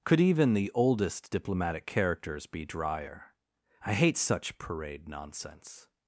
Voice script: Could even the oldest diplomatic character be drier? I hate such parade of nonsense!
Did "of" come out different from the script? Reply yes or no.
yes